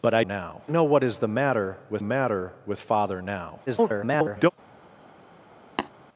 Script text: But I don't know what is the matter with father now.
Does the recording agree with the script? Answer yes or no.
no